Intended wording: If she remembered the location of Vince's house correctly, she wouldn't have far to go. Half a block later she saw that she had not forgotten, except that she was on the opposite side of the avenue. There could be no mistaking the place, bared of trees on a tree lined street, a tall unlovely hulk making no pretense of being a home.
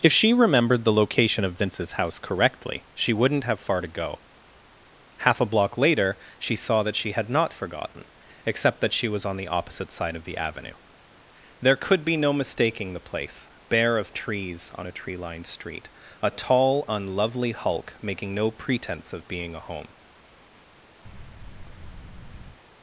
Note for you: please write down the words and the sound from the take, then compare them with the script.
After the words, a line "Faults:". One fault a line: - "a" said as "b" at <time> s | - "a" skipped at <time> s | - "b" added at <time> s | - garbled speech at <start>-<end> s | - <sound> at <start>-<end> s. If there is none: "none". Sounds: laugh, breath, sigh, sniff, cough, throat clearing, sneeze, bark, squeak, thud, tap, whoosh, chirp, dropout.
If she remembered the location of Vince's house correctly, she wouldn't have far to go. Half a block later she saw that she had not forgotten, except that she was on the opposite side of the avenue. There could be no mistaking the place, bare of trees on a tree lined street, a tall unlovely hulk making no pretense of being a home.
Faults:
- "bared" said as "bare" at 13.7 s
- thud at 21.1-22.6 s